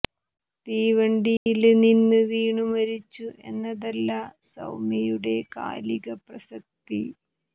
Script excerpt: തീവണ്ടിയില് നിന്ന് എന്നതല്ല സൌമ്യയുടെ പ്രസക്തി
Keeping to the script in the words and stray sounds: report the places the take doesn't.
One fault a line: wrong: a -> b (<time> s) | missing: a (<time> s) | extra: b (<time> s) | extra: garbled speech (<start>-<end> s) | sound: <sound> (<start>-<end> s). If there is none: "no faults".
sound: dropout (1.4-1.5 s)
extra: വീണു മരിച്ചു (2.3 s)
extra: കാലിക (5.6 s)